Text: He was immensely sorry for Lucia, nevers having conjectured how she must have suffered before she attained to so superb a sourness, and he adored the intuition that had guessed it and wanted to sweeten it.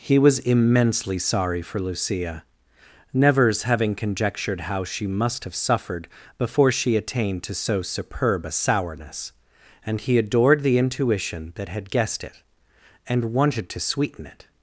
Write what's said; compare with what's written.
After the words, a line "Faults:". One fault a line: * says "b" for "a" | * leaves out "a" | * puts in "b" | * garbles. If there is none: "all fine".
He was immensely sorry for Lucia, nevers having conjectured how she must have suffered before she attained to so superb a sourness, and he adored the intuition that had guessed it and wanted to sweeten it.
Faults:
all fine